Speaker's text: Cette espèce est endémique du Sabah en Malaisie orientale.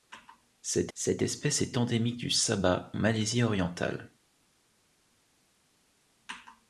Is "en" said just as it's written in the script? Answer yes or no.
no